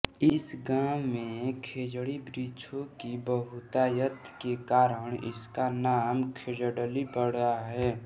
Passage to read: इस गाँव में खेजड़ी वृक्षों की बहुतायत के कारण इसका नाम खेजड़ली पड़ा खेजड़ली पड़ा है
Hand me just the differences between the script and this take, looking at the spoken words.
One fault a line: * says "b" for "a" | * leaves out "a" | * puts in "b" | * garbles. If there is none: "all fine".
* leaves out "खेजड़ली पड़ा"